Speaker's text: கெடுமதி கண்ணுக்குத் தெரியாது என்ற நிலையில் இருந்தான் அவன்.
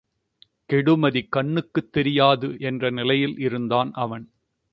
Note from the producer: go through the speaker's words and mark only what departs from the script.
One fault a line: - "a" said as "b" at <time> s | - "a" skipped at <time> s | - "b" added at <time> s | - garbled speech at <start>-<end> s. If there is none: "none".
none